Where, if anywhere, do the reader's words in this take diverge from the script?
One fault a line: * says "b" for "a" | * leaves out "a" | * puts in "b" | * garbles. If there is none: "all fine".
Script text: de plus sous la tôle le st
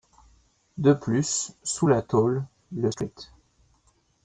all fine